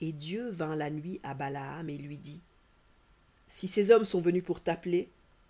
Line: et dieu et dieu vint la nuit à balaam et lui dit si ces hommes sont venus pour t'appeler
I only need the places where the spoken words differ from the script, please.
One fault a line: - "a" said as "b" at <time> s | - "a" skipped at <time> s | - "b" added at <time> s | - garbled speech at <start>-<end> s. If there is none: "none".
- "et dieu" skipped at 0.5 s